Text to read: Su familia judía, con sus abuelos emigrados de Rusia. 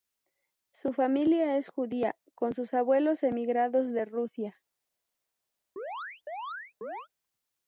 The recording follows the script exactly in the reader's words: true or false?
false